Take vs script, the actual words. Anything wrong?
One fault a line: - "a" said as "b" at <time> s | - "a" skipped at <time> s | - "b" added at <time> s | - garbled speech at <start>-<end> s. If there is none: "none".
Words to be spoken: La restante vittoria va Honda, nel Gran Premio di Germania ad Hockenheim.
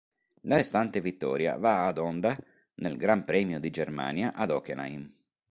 - "ad" added at 1.9 s